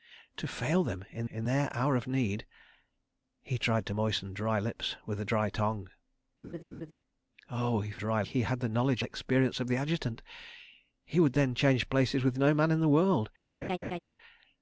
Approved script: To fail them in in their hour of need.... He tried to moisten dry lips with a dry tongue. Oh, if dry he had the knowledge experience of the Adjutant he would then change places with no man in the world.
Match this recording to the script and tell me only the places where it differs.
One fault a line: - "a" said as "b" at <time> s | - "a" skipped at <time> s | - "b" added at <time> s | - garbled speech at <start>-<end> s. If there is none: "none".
none